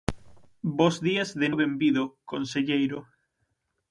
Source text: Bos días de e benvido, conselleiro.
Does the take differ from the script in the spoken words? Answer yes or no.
no